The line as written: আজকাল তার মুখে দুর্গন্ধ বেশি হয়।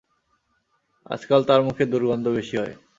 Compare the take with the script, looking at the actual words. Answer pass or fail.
pass